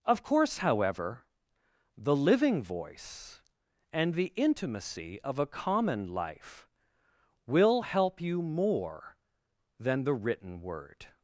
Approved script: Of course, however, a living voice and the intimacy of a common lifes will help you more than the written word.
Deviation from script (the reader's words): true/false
true